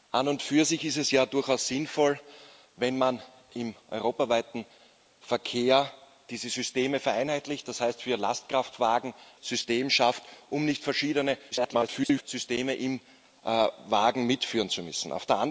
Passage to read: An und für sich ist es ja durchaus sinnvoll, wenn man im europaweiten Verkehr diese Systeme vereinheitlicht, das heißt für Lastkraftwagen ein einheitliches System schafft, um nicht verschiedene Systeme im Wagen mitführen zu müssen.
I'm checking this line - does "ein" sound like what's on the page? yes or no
no